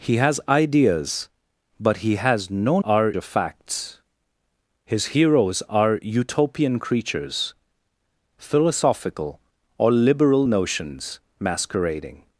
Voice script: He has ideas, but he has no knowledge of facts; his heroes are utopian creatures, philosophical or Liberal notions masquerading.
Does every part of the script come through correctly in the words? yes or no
no